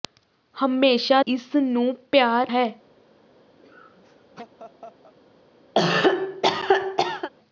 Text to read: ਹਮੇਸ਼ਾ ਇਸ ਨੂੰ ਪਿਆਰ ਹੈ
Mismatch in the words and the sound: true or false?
true